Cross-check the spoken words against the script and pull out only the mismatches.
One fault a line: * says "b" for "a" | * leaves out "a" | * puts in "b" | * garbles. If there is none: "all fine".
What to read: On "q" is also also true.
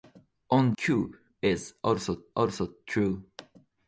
all fine